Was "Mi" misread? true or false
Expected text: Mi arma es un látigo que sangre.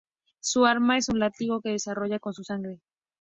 true